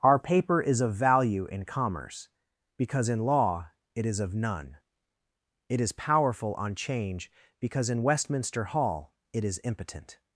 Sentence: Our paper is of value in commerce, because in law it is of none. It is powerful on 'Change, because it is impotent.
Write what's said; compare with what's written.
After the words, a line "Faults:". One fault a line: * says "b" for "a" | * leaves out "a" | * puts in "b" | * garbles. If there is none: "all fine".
Our paper is of value in commerce, because in law it is of none. It is powerful on 'Change, because in Westminster Hall it is impotent.
Faults:
* puts in "in Westminster Hall"